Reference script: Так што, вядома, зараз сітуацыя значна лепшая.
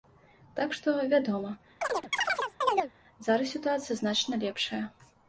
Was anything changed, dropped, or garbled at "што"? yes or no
no